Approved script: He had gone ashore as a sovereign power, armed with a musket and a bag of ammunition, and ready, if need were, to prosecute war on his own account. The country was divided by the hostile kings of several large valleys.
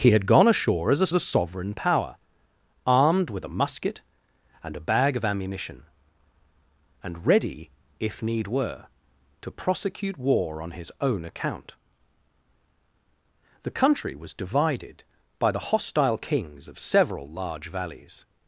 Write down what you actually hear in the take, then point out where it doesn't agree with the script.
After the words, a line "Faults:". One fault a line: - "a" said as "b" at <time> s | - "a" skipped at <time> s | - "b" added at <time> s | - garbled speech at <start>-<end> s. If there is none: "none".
He had gone ashore as a a sovereign power, armed with a musket and a bag of ammunition, and ready, if need were, to prosecute war on his own account. The country was divided by the hostile kings of several large valleys.
Faults:
- "a" added at 1.1 s